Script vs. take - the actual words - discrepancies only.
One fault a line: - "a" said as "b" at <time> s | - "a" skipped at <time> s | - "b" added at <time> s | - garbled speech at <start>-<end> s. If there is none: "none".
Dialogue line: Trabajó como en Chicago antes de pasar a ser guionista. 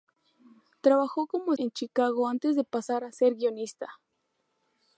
none